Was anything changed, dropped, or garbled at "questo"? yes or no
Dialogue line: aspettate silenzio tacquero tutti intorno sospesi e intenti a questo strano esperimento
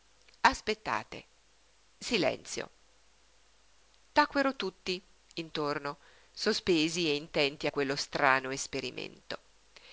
yes